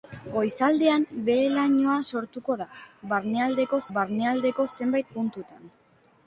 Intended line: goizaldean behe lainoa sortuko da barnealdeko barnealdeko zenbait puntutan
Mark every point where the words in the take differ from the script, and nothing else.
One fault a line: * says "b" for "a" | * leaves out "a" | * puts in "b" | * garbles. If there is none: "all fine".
all fine